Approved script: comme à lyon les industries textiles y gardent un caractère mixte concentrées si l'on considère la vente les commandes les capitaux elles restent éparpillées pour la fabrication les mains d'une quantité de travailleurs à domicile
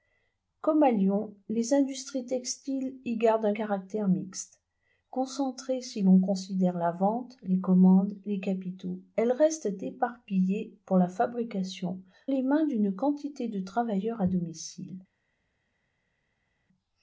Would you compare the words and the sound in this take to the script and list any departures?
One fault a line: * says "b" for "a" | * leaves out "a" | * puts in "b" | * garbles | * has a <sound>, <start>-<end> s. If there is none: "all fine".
all fine